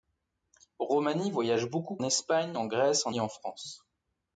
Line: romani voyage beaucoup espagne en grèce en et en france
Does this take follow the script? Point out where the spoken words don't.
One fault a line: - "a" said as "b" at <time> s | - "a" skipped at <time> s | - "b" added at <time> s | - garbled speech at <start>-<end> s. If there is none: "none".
none